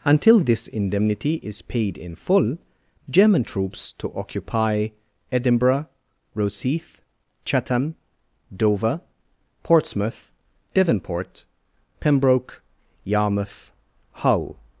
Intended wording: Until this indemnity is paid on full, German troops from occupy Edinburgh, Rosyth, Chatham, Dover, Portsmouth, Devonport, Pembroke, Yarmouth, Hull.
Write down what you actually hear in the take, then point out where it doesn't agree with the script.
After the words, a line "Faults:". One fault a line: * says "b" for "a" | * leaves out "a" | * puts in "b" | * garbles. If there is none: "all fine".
Until this indemnity is paid in full, German troops to occupy Edinburgh, Rosyth, Chatham, Dover, Portsmouth, Devonport, Pembroke, Yarmouth, Hull.
Faults:
* says "in" for "on"
* says "to" for "from"